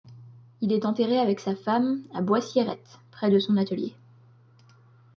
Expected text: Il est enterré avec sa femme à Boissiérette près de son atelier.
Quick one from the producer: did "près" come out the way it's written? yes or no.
yes